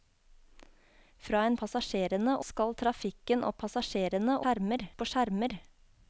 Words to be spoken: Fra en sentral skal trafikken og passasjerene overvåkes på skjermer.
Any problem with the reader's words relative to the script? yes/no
yes